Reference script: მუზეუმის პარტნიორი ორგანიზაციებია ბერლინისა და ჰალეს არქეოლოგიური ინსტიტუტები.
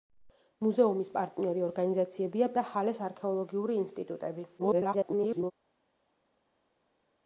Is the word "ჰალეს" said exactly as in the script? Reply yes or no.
yes